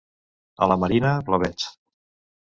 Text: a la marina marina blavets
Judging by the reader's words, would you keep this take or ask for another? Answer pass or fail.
fail